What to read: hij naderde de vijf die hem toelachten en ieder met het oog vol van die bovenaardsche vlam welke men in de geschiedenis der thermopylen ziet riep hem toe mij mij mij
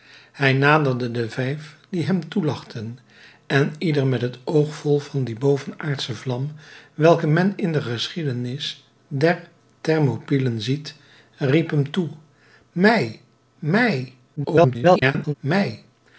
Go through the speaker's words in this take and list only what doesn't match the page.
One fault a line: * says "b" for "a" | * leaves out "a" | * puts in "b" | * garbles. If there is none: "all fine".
* garbles